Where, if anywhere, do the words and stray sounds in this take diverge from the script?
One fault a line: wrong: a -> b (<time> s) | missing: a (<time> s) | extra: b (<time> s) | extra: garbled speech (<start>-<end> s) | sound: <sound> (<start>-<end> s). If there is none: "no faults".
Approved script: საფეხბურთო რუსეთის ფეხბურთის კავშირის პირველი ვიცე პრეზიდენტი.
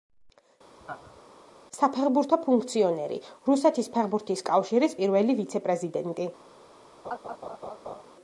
sound: laugh (0.8-1.2 s)
extra: ფუნქციონერი (2.4 s)
sound: laugh (7.0-8.0 s)